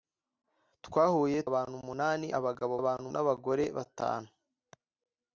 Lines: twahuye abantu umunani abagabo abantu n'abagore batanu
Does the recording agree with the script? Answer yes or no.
yes